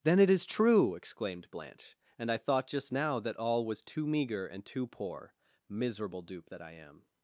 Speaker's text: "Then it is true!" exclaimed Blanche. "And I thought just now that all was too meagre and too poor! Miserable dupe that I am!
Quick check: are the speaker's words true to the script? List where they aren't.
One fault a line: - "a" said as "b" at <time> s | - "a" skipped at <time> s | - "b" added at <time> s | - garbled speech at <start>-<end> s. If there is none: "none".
none